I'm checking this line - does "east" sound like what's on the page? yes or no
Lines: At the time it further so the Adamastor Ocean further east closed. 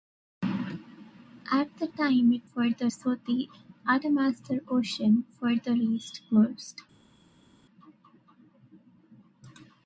yes